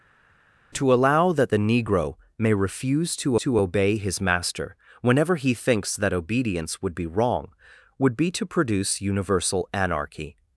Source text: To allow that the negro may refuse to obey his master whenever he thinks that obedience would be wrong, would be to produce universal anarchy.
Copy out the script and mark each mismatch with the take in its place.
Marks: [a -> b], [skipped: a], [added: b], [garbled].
To allow that the negro may refuse to [added: to] obey his master whenever he thinks that obedience would be wrong, would be to produce universal anarchy.